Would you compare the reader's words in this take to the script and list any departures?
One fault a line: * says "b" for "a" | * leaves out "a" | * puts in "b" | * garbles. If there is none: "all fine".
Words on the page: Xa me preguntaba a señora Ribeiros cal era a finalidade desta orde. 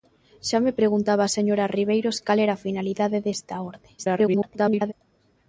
* garbles